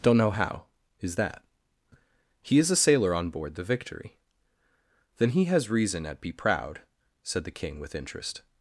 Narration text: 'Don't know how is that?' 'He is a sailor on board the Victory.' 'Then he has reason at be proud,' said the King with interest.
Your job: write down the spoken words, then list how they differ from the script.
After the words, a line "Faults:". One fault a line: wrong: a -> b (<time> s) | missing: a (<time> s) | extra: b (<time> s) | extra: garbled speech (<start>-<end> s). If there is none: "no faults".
'Don't know how is that?' 'He is a sailor on board the Victory.' 'Then he has reason at be proud,' said the King with interest.
Faults:
no faults